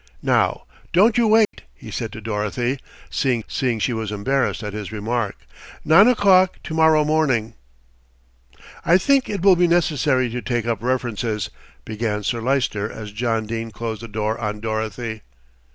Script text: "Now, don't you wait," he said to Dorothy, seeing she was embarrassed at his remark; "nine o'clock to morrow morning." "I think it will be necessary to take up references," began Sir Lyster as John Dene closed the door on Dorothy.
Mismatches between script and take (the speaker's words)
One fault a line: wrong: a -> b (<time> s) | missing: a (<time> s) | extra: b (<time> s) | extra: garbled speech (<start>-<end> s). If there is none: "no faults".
extra: seeing (3.5 s)